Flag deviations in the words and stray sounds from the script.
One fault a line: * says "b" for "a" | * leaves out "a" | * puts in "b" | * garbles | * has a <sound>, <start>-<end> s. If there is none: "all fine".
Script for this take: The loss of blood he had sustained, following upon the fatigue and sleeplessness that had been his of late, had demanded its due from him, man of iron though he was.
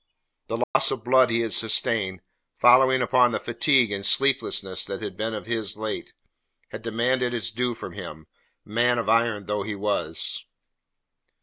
* has a dropout, 0.6-0.8 s